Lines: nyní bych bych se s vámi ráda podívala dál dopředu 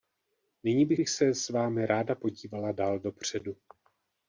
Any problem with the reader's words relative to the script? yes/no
no